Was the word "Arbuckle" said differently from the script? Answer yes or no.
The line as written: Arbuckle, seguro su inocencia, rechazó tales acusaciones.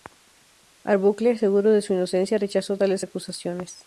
no